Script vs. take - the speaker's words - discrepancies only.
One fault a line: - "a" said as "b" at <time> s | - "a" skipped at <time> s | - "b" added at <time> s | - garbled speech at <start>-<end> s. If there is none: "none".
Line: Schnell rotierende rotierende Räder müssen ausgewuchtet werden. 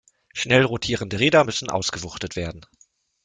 - "rotierende" skipped at 1.2 s